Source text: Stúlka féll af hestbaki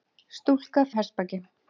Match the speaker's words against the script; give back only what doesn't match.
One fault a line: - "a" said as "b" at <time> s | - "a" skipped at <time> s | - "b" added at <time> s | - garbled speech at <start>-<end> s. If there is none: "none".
- "féll" skipped at 0.8 s